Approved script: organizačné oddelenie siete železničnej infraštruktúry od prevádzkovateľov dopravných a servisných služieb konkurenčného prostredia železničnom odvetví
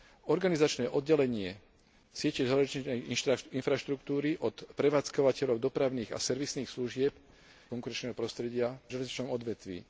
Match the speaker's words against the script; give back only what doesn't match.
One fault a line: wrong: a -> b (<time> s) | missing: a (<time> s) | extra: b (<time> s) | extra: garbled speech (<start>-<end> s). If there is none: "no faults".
no faults